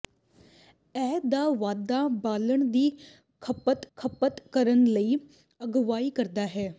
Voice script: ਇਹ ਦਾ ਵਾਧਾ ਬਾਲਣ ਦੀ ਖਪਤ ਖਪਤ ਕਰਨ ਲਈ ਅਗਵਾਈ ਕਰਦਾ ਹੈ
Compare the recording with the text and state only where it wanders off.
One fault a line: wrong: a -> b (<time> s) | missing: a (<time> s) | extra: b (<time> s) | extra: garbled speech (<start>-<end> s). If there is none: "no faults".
no faults